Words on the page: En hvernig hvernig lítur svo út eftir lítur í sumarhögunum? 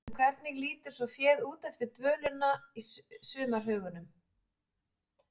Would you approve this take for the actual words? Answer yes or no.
no